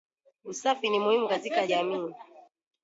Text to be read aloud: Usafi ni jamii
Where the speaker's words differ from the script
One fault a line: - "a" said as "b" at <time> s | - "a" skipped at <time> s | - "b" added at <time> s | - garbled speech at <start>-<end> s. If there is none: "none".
- "muhimu katika" added at 1.0 s